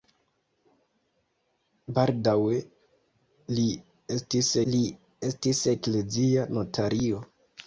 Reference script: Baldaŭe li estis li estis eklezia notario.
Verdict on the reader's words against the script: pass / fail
pass